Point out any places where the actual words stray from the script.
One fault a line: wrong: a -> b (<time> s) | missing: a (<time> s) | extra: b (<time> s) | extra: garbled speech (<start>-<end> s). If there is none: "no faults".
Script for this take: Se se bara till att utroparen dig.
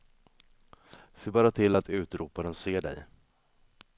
missing: se (1.3 s)
extra: ser (2.5 s)